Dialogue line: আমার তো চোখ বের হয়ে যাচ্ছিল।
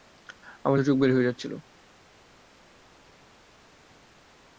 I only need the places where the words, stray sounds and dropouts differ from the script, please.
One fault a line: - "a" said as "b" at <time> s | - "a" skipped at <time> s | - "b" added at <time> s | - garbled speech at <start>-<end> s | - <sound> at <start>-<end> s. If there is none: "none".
none